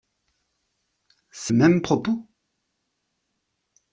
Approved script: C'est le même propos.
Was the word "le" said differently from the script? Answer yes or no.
yes